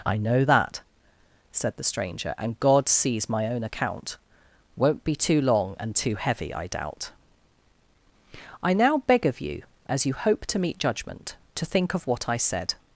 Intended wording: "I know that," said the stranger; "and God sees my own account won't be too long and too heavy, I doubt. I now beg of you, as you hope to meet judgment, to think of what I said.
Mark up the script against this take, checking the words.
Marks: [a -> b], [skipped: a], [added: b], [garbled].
"I know that," said the stranger; "and God sees my own account won't be too long and too heavy, I doubt. I now beg of you, as you hope to meet judgment, to think of what I said.